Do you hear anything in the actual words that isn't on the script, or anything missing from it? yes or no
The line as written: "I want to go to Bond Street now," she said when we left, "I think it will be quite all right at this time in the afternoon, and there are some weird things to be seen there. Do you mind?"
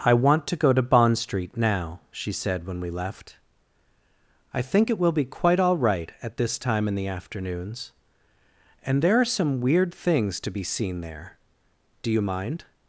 yes